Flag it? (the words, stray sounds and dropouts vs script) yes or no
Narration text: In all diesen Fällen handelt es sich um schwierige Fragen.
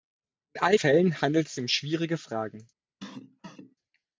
yes